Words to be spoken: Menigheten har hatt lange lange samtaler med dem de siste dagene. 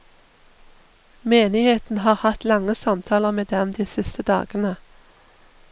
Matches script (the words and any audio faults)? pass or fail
fail